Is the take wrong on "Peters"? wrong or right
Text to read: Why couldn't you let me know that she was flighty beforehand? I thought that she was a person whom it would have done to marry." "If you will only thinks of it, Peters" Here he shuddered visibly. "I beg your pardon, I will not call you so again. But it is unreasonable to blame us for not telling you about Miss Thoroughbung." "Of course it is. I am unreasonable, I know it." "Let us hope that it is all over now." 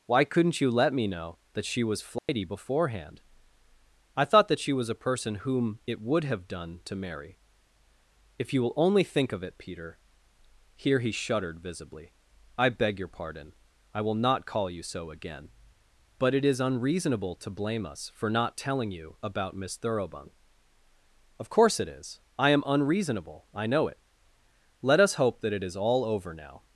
wrong